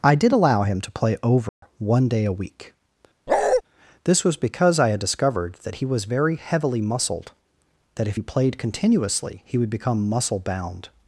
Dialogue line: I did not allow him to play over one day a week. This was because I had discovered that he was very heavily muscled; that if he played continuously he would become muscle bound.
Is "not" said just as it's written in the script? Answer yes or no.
no